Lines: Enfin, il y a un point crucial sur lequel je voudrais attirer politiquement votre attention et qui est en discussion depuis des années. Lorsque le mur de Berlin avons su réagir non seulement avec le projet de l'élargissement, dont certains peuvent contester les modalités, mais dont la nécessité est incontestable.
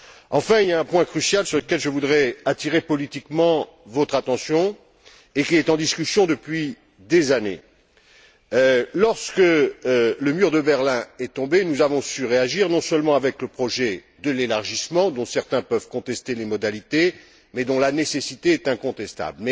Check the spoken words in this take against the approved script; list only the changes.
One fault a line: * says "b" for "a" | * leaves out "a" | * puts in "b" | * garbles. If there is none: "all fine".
* puts in "est tombé nous"